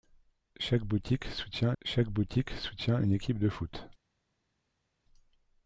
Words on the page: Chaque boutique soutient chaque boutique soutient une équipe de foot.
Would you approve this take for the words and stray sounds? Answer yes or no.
yes